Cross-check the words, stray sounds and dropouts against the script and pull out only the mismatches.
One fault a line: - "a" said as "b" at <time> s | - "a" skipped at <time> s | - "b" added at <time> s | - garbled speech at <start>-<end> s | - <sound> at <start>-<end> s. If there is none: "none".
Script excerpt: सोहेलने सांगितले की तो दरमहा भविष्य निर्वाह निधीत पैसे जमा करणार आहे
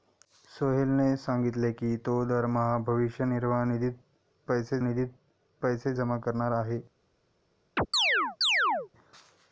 - "निधीत पैसे" added at 4.8 s
- chirp at 7.8-8.9 s